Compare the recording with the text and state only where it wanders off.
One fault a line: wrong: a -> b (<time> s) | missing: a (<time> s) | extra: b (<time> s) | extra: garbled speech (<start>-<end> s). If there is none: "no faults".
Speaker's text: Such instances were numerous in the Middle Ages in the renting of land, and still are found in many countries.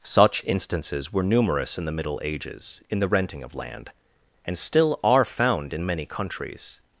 no faults